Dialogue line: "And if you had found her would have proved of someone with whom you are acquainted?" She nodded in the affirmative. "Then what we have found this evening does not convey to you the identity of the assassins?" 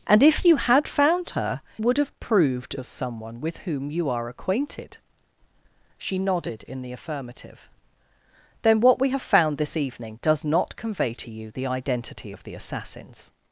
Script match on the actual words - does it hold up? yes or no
yes